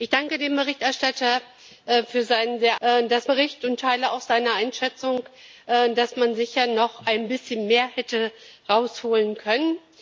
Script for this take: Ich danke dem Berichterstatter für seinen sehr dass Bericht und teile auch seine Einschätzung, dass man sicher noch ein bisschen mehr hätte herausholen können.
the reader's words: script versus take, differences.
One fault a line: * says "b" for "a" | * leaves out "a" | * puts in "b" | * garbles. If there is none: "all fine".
all fine